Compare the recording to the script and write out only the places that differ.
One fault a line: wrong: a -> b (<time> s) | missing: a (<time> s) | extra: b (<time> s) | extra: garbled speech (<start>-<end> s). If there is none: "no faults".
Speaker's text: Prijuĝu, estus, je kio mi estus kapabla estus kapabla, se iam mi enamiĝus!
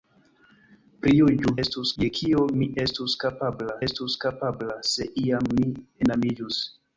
no faults